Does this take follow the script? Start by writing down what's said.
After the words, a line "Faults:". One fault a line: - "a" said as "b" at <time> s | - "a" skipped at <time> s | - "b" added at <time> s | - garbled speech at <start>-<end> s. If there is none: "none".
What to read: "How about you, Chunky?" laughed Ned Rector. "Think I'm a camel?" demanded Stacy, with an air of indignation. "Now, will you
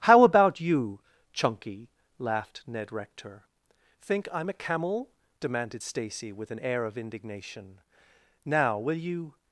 "How about you, Chunky?" laughed Ned Rector. "Think I'm a camel?" demanded Stacy, with an air of indignation. "Now, will you
Faults:
none